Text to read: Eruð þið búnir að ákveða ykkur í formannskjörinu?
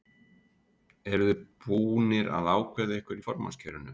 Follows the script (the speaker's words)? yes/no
yes